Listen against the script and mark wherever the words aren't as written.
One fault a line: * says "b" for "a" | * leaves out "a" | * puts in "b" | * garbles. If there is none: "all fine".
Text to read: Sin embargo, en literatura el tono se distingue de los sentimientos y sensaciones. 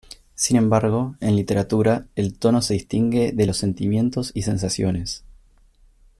all fine